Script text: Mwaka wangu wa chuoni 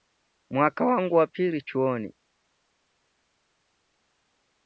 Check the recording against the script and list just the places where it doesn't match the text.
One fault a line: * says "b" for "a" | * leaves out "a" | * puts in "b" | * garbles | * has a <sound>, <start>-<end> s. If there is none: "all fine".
* puts in "pili"